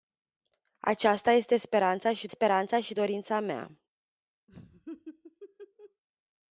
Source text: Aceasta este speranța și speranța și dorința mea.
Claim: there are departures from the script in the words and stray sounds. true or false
true